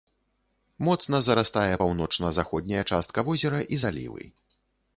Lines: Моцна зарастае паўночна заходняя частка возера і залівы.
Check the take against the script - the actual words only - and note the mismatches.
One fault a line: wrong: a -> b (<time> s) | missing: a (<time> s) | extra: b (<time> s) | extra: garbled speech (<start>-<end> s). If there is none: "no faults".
no faults